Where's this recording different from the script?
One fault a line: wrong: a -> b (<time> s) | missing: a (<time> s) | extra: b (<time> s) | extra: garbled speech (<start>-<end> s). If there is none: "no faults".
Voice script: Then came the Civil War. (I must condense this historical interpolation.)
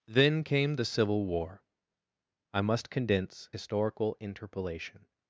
missing: this (3.5 s)